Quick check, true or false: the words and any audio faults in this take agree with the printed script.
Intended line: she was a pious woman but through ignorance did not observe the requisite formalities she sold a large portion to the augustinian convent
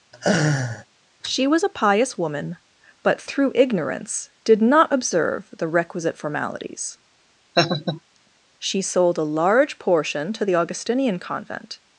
false